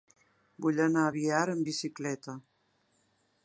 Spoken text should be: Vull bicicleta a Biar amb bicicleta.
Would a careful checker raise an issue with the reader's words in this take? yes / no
yes